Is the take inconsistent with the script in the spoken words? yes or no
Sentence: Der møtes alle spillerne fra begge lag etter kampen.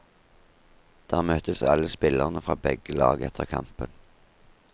no